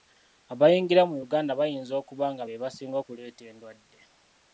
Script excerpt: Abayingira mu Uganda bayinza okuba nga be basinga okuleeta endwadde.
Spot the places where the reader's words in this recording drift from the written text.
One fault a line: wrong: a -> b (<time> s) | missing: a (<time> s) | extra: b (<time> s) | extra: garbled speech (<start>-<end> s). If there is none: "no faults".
no faults